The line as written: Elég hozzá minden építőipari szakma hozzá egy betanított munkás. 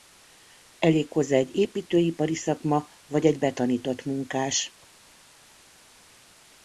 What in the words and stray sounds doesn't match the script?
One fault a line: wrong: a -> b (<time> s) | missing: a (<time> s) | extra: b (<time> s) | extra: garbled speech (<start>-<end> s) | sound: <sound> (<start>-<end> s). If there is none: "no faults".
wrong: minden -> egy (1.4 s)
wrong: hozzá -> vagy (3.1 s)